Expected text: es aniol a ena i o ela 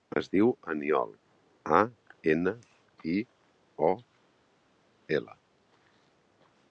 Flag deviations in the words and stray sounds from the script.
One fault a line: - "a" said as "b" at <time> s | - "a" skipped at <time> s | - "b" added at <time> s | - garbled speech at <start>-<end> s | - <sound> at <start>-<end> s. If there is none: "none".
- "diu" added at 0.3 s